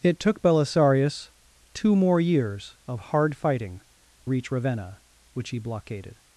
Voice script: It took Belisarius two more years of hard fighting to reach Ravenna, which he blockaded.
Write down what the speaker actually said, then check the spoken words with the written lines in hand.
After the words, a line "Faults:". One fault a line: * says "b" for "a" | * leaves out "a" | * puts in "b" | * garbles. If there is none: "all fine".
It took Belisarius two more years of hard fighting reach Ravenna, which he blockaded.
Faults:
* leaves out "to"